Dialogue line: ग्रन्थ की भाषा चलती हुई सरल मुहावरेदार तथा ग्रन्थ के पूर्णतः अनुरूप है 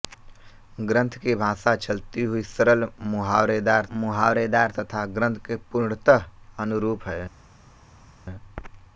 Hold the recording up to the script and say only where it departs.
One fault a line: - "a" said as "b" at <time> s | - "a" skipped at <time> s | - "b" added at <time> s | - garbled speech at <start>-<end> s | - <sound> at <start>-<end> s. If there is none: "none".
- "मुहावरेदार" added at 3.9 s